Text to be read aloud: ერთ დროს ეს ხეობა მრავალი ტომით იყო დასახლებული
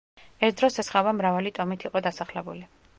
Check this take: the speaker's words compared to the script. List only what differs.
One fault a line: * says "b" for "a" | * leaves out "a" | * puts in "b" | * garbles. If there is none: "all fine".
all fine